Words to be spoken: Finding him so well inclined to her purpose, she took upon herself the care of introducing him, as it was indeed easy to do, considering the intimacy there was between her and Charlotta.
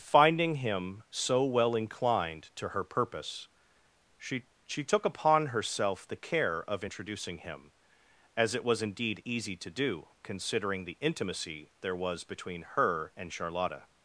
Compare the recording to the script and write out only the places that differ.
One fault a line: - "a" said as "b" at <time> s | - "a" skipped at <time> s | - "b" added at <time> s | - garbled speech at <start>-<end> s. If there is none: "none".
- "she" added at 4.6 s